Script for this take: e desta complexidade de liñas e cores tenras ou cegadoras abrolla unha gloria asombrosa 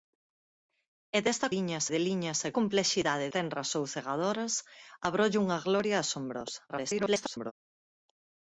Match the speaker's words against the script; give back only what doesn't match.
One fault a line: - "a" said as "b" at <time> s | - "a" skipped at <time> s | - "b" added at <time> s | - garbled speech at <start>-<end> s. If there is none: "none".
- "complexidade" said as "liñas" at 1.5 s
- "cores" said as "complexidade" at 2.6 s
- garbled speech at 6.7-7.5 s